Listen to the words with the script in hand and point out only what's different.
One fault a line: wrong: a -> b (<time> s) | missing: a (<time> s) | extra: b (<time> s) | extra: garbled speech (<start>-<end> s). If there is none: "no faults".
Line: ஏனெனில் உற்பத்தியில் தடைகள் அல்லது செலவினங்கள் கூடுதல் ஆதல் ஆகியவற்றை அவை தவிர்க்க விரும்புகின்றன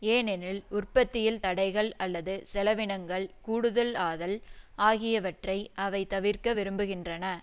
no faults